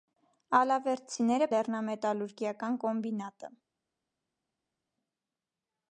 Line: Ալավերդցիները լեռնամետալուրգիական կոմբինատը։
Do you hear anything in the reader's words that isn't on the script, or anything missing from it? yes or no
no